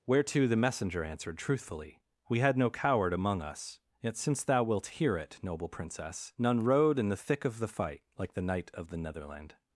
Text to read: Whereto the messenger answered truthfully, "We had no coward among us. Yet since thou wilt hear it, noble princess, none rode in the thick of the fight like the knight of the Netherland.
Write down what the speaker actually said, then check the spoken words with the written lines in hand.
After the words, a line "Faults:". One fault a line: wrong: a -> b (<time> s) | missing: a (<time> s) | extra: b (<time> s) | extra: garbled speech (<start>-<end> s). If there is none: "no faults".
Whereto the messenger answered truthfully, "We had no coward among us. Yet since thou wilt hear it, noble princess, none rode in the thick of the fight like the knight of the Netherland.
Faults:
no faults